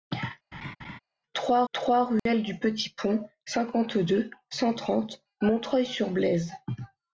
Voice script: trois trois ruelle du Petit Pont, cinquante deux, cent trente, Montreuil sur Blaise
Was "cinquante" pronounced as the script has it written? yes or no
yes